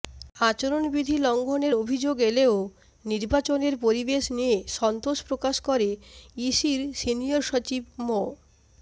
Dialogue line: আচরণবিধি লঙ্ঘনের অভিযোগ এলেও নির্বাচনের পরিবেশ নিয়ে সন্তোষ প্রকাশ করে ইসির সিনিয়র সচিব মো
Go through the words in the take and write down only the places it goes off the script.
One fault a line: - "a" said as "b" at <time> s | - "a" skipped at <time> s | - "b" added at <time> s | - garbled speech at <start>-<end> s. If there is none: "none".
none